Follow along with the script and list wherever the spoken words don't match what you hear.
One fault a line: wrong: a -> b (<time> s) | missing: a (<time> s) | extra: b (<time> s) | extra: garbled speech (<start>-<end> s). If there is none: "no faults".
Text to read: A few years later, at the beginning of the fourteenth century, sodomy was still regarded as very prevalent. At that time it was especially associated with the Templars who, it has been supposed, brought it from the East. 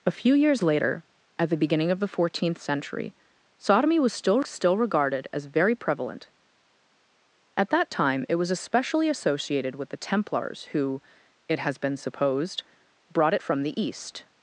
extra: still (4.4 s)